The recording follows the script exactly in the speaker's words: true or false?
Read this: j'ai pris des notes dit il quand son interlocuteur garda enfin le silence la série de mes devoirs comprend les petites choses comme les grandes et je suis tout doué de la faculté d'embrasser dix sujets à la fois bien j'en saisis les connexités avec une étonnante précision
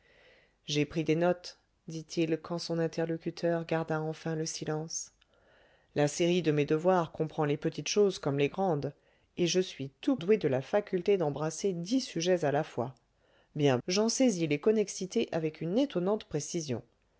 true